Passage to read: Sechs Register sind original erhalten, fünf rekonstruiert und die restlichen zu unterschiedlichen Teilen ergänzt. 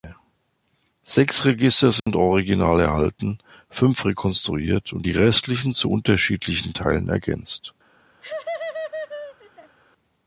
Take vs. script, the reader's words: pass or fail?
pass